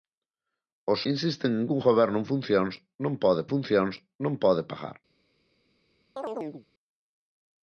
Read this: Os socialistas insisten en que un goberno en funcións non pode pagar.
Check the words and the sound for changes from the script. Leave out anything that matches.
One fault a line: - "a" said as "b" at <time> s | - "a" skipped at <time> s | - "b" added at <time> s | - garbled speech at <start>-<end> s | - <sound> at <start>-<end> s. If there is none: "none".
- "socialistas" skipped at 1.0 s
- "funcións non pode" added at 3.5 s
- chirp at 6.2-6.7 s